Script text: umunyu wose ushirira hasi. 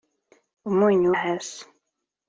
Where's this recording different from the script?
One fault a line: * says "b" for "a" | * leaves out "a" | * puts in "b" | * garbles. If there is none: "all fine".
* leaves out "wose ushirira"